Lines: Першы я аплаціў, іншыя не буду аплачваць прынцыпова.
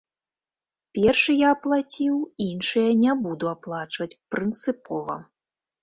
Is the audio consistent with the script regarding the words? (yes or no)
yes